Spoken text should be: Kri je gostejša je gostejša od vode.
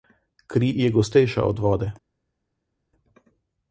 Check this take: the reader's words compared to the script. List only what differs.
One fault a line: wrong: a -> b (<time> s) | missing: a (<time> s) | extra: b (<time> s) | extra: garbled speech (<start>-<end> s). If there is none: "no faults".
missing: je gostejša (1.4 s)